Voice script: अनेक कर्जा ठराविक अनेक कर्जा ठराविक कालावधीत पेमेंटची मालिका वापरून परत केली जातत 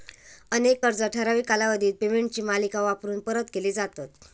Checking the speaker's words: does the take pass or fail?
fail